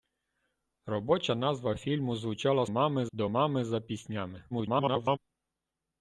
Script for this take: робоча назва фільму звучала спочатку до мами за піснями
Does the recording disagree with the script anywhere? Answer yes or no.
yes